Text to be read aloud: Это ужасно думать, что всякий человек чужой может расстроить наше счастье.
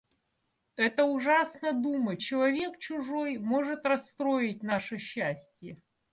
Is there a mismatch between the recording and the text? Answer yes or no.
yes